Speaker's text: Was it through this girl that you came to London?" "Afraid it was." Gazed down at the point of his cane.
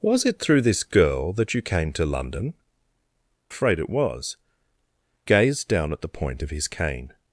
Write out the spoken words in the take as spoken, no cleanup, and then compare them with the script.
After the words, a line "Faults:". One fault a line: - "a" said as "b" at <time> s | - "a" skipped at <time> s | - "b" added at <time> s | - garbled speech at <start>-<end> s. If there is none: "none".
Was it through this girl that you came to London?" "Afraid it was." Gazed down at the point of his cane.
Faults:
none